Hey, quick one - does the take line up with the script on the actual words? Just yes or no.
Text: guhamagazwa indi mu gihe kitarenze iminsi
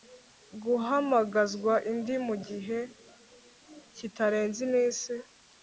yes